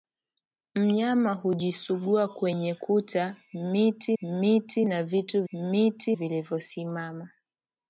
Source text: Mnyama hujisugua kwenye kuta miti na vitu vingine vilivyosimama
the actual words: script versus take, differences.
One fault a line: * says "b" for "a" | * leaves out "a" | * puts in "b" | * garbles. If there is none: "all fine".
* puts in "miti"
* says "miti" for "vingine"